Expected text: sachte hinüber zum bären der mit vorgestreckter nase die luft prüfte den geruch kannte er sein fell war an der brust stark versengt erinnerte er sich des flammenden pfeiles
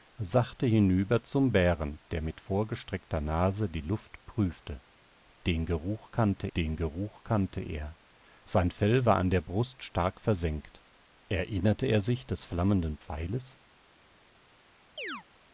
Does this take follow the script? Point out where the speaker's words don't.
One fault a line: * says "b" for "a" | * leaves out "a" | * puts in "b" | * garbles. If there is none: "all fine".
* puts in "den geruch kannte"